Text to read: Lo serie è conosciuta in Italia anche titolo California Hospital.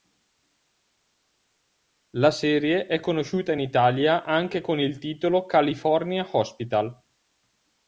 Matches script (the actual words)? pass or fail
fail